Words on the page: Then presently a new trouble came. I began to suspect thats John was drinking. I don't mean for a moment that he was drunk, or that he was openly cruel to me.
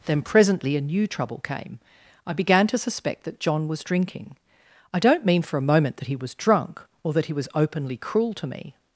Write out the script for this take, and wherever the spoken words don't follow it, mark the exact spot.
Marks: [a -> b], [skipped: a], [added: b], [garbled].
Then presently a new trouble came. I began to suspect [thats -> that] John was drinking. I don't mean for a moment that he was drunk, or that he was openly cruel to me.